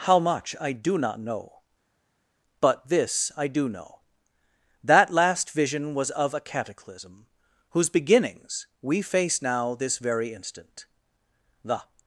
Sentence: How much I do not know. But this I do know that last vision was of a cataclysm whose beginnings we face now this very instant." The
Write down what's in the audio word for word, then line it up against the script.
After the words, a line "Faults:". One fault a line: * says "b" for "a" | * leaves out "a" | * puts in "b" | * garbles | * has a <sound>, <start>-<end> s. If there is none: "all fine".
How much I do not know. But this I do know that last vision was of a cataclysm whose beginnings we face now this very instant." The
Faults:
all fine